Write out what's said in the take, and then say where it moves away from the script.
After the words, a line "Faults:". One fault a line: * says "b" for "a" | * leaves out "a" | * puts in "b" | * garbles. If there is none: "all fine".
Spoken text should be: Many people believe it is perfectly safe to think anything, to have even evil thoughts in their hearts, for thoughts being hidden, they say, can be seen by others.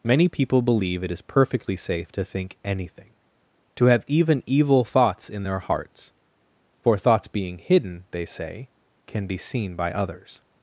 Many people believe it is perfectly safe to think anything, to have even evil thoughts in their hearts, for thoughts being hidden, they say, can be seen by others.
Faults:
all fine